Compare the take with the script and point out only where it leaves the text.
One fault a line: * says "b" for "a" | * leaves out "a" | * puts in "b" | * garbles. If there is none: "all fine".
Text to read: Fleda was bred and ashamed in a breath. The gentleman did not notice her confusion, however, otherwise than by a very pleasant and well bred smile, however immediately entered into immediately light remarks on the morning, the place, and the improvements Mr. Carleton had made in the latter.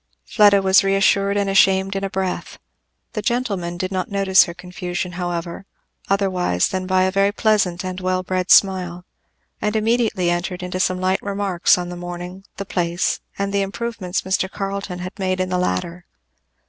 * says "reassured" for "bred"
* says "and" for "however"
* says "some" for "immediately"